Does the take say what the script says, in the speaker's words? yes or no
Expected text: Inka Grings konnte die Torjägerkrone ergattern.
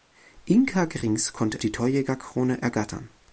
yes